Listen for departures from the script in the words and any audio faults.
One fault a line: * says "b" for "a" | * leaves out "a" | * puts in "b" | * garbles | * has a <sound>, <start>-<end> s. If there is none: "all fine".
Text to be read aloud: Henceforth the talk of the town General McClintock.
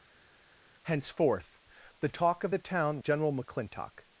all fine